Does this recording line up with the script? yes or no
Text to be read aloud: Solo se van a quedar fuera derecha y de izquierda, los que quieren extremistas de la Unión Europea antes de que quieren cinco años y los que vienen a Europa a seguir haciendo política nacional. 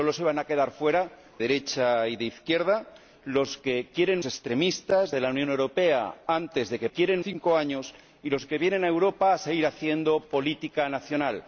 yes